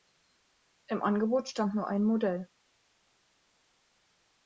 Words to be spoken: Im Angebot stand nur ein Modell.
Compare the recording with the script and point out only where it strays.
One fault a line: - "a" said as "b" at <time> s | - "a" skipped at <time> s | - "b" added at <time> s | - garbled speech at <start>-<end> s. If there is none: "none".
none